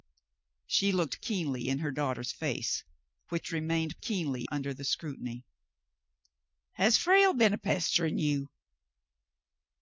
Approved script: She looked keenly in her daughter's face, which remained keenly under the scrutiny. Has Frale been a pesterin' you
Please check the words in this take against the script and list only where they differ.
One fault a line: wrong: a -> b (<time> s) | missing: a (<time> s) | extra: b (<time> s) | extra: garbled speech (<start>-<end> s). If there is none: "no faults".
no faults